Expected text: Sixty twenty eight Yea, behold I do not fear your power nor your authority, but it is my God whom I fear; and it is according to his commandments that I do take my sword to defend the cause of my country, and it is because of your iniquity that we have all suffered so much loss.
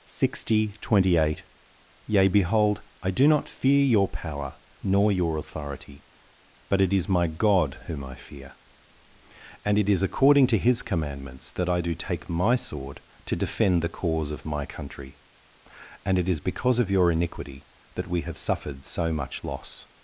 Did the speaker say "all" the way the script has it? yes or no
no